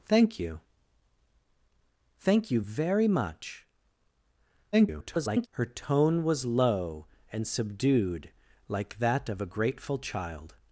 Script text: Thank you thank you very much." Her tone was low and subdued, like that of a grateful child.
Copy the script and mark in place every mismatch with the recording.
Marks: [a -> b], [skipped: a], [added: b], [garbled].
Thank you thank you very much." [garbled] Her tone was low and subdued, like that of a grateful child.